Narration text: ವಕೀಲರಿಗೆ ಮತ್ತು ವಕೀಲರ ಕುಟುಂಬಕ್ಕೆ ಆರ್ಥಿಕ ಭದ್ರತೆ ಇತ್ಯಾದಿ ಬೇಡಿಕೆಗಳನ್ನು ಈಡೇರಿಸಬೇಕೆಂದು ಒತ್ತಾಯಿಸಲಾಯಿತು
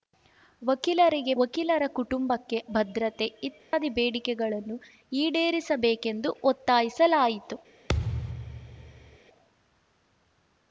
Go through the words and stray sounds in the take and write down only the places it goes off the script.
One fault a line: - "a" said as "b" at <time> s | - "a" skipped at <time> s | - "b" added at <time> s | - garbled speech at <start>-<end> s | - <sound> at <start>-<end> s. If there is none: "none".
- "ಮತ್ತು" skipped at 1.3 s
- "ಆರ್ಥಿಕ" skipped at 2.6 s
- dropout at 3.6-3.7 s
- thud at 7.9-9.2 s